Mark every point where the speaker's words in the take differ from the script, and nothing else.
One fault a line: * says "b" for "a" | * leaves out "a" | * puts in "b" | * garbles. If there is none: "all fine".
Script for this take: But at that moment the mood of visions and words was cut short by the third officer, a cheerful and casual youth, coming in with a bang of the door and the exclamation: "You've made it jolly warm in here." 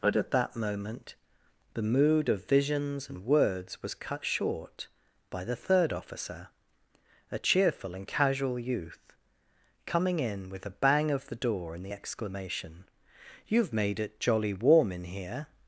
all fine